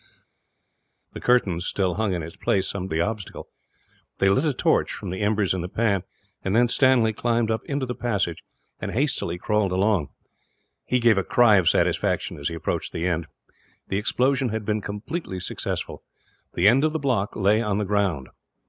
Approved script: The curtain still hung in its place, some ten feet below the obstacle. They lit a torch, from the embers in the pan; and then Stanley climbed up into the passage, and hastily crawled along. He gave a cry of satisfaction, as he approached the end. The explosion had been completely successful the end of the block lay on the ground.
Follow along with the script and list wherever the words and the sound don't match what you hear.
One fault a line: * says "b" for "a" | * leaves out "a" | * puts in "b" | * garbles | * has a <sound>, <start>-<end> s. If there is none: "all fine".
* leaves out "ten feet below"